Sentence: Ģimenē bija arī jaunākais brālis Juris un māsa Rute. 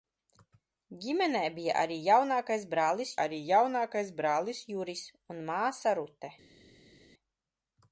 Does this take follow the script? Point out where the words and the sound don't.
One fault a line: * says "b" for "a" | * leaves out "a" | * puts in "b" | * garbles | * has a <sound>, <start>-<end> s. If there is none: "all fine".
* puts in "arī jaunākais brālis"